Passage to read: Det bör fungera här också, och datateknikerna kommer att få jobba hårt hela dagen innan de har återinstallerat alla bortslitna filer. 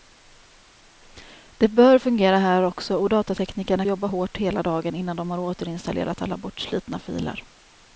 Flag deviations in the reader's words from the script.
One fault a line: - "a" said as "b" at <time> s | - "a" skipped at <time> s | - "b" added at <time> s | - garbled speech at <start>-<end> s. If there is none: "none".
- "kommer att få" skipped at 3.9 s